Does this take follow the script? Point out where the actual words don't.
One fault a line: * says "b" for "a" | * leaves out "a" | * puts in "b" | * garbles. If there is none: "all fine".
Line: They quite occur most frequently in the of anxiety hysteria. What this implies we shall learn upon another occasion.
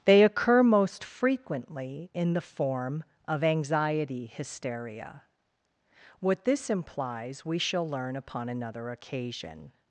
* leaves out "quite"
* puts in "form"